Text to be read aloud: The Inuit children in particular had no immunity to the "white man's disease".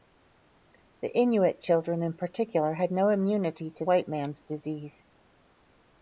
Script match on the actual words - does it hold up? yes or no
no